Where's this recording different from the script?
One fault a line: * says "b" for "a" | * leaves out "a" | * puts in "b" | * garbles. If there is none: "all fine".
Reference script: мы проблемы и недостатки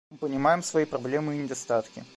* puts in "понимаем свои"